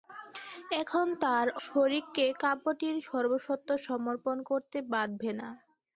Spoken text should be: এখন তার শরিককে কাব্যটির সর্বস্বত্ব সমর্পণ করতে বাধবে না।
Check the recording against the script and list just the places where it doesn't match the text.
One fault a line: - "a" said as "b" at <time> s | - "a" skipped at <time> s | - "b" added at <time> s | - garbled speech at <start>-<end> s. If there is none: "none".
none